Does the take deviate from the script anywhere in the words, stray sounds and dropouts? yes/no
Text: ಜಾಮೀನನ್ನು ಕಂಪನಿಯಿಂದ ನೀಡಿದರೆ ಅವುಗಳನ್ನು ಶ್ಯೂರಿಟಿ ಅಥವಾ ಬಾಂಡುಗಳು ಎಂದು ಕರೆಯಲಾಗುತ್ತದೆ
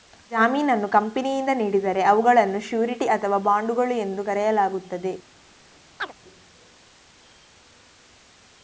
yes